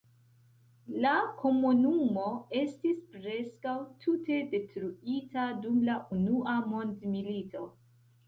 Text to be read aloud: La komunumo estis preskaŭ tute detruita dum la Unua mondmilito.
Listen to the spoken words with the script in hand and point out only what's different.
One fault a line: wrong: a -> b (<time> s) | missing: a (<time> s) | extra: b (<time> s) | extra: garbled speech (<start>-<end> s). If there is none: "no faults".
no faults